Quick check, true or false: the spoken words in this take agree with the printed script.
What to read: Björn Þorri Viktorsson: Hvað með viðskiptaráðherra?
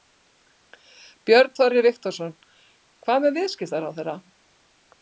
true